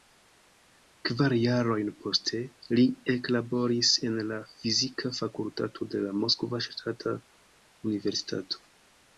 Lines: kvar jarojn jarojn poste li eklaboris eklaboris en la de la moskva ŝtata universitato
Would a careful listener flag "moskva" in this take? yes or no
no